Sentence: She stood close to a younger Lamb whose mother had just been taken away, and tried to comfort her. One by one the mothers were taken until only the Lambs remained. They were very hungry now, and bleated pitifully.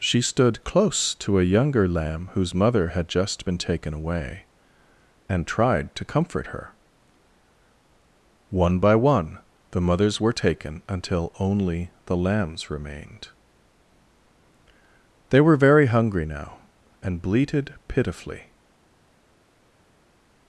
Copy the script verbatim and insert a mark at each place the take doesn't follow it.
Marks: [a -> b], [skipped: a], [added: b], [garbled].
She stood close to a younger Lamb whose mother had just been taken away, and tried to comfort her. One by one the mothers were taken until only the Lambs remained. They were very hungry now, and bleated pitifully.